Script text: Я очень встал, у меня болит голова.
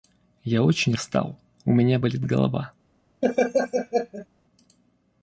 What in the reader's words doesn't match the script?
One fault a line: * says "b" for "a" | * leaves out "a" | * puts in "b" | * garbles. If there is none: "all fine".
all fine